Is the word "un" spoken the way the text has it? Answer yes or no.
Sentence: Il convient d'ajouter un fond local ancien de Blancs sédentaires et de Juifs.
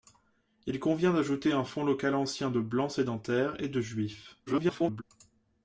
yes